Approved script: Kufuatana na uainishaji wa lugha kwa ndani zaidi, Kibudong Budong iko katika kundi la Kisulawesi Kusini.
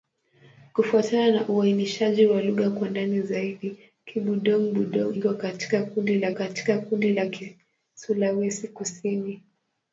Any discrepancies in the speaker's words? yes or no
yes